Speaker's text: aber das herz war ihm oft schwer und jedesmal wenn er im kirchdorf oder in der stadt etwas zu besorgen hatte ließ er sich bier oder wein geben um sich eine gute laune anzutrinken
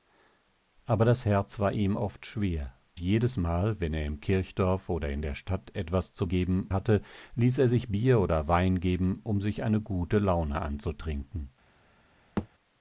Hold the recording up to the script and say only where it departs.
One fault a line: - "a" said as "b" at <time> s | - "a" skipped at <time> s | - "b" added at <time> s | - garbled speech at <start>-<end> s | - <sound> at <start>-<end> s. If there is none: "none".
- "und" skipped at 2.7 s
- "besorgen" said as "geben" at 6.3 s
- thud at 12.4-12.5 s